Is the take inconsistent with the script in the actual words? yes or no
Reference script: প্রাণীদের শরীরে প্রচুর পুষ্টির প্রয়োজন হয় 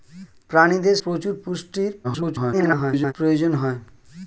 yes